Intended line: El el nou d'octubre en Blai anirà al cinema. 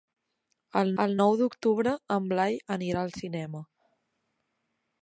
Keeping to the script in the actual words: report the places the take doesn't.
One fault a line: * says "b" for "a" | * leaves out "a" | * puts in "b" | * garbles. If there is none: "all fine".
all fine